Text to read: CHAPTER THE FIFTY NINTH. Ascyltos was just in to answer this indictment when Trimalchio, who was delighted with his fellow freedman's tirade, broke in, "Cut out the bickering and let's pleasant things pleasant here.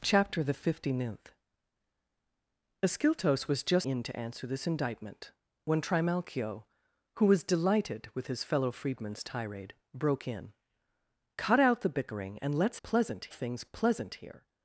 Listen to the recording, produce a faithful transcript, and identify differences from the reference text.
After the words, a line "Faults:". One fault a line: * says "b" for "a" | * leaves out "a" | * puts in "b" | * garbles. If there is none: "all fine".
CHAPTER THE FIFTY NINTH. Ascyltos was just in to answer this indictment when Trimalchio, who was delighted with his fellow freedman's tirade, broke in, "Cut out the bickering and let's pleasant things pleasant here.
Faults:
all fine